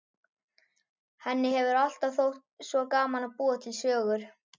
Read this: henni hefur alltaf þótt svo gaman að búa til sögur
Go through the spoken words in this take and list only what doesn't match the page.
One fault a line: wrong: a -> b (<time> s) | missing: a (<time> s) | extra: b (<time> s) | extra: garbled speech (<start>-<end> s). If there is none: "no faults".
no faults